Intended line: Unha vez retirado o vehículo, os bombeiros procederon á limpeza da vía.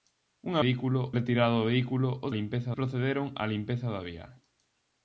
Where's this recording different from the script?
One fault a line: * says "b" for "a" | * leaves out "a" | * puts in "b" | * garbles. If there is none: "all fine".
* says "vehículo" for "vez"
* says "limpeza" for "bombeiros"